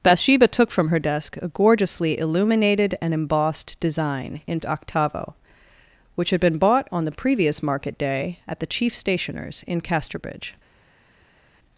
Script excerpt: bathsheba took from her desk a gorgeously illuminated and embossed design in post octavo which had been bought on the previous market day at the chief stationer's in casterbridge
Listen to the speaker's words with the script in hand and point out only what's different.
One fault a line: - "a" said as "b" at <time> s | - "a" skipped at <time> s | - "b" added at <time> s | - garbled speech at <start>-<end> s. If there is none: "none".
- "post" skipped at 4.6 s